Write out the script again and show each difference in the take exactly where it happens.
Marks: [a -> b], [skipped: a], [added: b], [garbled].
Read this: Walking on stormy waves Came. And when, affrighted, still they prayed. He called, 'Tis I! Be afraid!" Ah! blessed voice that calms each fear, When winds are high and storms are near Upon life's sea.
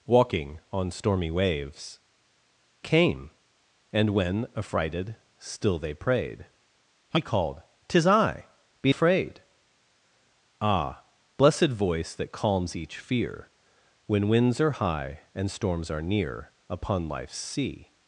Walking on stormy waves Came. And when, affrighted, still they prayed. He called, 'Tis I! Be afraid!" Ah! blessed voice that calms each fear, When winds are high and storms are near Upon life's sea.